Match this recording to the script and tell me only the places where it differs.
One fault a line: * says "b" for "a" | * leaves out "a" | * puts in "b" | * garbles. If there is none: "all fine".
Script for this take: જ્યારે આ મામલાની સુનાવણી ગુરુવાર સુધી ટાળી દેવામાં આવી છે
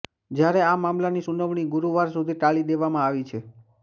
all fine